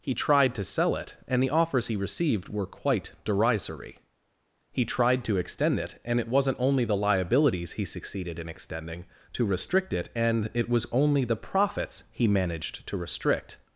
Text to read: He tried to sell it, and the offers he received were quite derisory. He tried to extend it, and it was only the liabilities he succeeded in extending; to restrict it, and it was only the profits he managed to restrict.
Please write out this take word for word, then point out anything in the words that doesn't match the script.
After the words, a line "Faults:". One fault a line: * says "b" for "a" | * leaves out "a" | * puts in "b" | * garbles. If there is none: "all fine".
He tried to sell it, and the offers he received were quite derisory. He tried to extend it, and it wasn't only the liabilities he succeeded in extending; to restrict it, and it was only the profits he managed to restrict.
Faults:
* says "wasn't" for "was"